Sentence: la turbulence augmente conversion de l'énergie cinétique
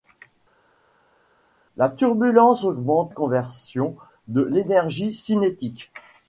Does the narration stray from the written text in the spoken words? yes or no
no